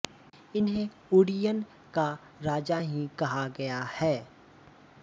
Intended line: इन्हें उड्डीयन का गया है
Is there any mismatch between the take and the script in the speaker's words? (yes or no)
yes